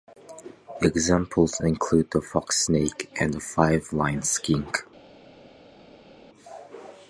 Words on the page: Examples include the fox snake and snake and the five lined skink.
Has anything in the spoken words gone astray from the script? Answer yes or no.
yes